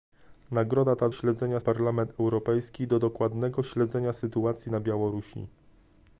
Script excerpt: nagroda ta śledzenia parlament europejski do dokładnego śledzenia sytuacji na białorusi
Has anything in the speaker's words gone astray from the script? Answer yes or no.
no